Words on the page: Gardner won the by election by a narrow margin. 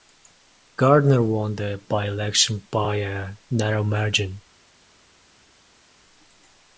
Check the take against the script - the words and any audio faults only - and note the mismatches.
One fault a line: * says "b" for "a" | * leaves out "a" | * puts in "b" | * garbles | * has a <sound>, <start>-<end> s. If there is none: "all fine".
all fine